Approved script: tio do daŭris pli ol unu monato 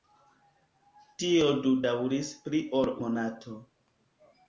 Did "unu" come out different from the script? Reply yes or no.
yes